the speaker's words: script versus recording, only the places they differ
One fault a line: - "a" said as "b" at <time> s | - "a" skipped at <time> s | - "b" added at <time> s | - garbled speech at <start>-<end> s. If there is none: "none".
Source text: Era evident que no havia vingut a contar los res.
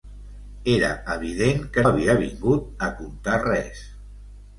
- "no" skipped at 1.8 s
- "los" skipped at 3.4 s